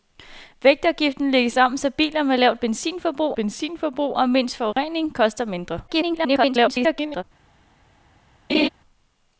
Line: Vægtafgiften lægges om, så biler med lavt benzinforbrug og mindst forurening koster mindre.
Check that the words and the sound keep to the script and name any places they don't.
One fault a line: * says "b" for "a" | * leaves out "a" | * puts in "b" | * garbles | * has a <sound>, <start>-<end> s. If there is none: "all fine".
* puts in "benzinforbrug"
* has a dropout, 4.7-4.8 s
* garbles
* has a laugh, 8.5-8.7 s